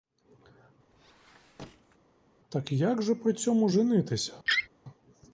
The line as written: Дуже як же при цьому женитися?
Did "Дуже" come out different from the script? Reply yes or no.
yes